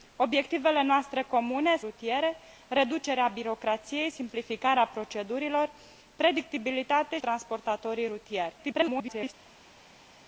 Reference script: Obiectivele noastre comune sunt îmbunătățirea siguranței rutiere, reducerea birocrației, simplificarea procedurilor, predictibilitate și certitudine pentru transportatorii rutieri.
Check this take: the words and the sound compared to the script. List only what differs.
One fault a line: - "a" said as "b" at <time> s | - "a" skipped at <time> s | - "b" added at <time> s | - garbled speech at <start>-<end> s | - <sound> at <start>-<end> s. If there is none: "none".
- "sunt îmbunătățirea siguranței" skipped at 1.8 s
- "și certitudine pentru" skipped at 7.2 s
- garbled speech at 8.6-9.3 s